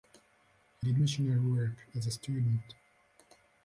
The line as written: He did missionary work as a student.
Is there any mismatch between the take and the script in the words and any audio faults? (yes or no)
no